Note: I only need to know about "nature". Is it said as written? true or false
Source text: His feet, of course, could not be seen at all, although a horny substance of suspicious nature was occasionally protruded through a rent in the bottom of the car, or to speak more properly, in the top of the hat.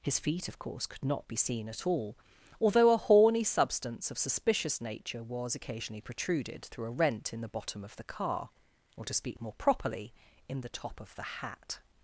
true